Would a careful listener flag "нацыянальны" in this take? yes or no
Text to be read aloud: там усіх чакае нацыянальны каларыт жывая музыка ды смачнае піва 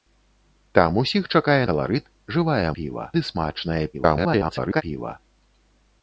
yes